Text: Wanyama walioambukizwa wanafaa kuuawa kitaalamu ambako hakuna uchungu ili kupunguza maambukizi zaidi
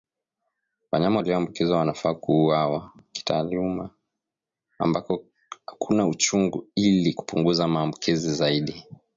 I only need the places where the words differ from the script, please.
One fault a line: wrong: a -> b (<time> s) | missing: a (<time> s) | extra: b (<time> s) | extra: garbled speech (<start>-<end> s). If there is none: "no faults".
no faults